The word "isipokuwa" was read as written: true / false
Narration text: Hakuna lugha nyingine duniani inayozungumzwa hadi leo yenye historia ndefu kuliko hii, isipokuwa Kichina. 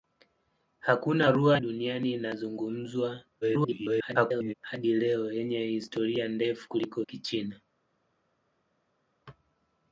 false